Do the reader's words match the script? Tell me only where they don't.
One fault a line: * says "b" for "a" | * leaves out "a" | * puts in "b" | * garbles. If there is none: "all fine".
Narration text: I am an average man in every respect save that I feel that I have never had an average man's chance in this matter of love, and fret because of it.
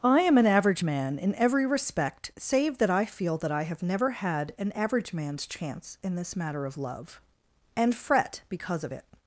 all fine